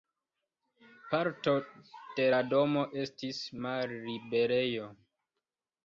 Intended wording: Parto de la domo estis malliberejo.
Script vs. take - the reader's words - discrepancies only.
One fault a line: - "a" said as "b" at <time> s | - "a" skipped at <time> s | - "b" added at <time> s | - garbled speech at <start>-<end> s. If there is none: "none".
none